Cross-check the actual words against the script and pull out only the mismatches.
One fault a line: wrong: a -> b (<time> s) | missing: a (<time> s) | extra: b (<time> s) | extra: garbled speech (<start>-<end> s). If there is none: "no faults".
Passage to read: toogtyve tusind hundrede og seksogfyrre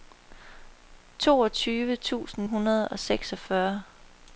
no faults